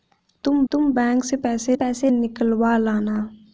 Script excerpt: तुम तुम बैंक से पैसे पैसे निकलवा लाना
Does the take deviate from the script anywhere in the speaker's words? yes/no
no